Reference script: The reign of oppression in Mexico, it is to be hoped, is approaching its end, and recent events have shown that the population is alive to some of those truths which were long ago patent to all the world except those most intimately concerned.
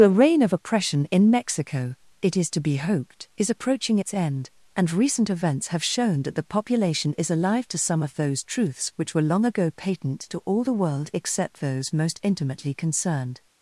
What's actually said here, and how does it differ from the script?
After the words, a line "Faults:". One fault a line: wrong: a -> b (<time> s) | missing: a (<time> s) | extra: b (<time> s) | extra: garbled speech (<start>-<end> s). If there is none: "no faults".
The reign of oppression in Mexico, it is to be hoped, is approaching its end, and recent events have shown that the population is alive to some of those truths which were long ago patent to all the world except those most intimately concerned.
Faults:
no faults